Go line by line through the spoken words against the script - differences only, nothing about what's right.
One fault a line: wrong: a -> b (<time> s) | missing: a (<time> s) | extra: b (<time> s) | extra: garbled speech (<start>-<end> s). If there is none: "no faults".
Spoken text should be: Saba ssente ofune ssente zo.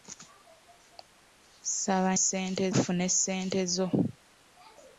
no faults